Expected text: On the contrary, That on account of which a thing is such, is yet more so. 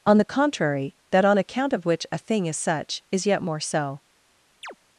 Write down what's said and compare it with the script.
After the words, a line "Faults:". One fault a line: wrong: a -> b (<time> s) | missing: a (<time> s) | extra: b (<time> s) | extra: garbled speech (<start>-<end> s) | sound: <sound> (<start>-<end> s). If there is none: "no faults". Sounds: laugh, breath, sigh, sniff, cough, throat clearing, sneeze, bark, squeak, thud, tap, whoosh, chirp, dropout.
On the contrary, That on account of which a thing is such, is yet more so.
Faults:
sound: chirp (4.6-4.8 s)